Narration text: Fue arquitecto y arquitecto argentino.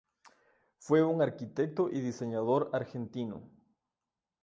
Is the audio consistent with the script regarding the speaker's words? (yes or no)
no